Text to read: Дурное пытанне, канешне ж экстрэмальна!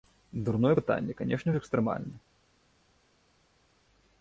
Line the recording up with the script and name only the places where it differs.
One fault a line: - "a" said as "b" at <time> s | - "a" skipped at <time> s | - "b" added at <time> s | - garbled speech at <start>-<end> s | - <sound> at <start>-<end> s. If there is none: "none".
none